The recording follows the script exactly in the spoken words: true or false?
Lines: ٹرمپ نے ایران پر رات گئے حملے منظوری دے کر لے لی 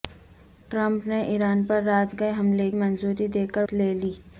true